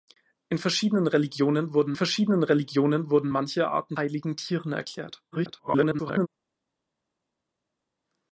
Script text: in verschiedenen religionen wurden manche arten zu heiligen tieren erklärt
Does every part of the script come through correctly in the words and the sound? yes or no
no